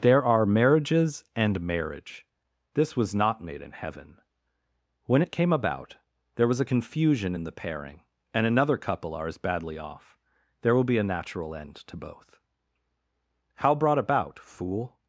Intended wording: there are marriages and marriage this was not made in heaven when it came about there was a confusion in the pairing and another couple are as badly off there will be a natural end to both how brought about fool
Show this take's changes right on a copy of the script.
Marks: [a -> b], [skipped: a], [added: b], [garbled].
there are marriages and marriage this was not made in heaven when it came about there was a confusion in the pairing and another couple are as badly off there will be a natural end to both how brought about fool